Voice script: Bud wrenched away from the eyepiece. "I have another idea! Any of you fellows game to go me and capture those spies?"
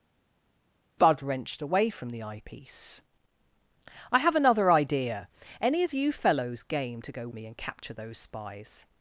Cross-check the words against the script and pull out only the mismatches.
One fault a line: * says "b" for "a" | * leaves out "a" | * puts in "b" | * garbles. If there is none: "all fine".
all fine